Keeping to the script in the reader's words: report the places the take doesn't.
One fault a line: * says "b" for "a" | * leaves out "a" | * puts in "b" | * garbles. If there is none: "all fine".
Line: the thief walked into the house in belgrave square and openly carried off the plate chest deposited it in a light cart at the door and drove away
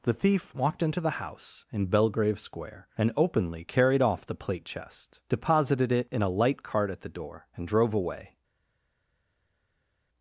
all fine